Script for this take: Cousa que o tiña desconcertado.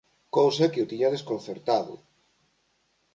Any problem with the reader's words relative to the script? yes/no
no